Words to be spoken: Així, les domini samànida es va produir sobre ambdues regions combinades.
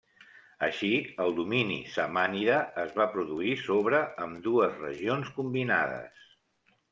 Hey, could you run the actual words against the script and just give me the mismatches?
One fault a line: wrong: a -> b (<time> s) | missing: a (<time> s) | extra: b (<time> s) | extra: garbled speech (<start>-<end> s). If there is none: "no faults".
wrong: les -> el (1.2 s)